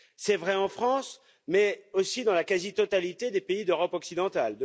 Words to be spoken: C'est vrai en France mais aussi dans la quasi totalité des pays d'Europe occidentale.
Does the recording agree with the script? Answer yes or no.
yes